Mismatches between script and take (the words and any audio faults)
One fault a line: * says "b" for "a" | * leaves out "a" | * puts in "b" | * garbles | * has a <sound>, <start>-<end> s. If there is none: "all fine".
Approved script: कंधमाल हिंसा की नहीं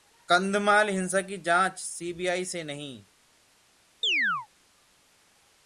* puts in "जांच सीबीआई से"
* has a chirp, 4.0-4.5 s